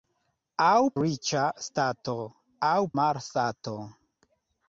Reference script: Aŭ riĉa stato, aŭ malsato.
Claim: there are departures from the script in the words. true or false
false